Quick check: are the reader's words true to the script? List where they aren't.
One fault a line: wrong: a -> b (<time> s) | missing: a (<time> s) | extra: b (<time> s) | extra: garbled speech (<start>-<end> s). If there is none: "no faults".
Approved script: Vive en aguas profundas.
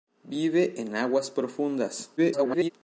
extra: garbled speech (2.2-2.7 s)